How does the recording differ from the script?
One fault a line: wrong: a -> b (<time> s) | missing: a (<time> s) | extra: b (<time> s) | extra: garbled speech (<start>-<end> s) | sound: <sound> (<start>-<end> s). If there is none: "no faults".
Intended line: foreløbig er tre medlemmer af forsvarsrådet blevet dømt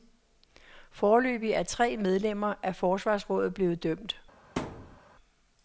sound: thud (4.6-5.0 s)